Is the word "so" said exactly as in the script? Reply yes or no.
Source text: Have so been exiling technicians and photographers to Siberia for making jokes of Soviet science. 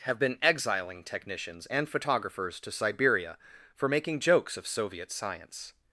no